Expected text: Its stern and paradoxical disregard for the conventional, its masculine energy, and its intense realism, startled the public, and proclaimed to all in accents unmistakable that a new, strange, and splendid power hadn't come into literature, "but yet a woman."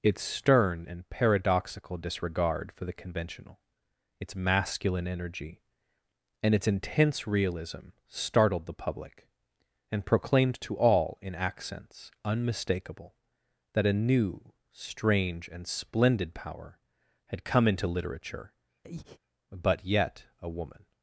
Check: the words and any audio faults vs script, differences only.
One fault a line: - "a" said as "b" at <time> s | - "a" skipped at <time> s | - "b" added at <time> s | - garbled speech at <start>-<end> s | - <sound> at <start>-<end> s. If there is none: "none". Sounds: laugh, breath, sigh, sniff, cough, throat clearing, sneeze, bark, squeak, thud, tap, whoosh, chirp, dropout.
- "hadn't" said as "had" at 17.3 s
- breath at 18.8-19.2 s